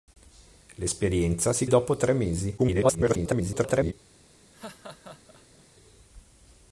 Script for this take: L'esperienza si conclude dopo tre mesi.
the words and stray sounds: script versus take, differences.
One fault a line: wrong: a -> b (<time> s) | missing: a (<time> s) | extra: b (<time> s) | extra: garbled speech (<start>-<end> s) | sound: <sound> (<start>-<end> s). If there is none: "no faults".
missing: conclude (1.7 s)
extra: garbled speech (2.6-3.9 s)
sound: laugh (4.5-5.6 s)